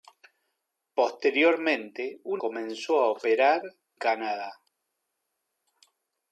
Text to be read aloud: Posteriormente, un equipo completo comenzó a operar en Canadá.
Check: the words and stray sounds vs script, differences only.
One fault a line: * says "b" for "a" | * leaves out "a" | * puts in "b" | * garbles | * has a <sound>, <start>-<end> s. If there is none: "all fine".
* leaves out "equipo completo"
* leaves out "en"